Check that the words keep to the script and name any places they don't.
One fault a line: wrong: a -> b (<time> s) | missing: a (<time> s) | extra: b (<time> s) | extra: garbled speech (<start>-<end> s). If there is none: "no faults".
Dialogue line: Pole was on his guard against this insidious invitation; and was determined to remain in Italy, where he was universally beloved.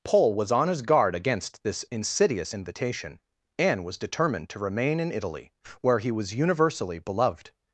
no faults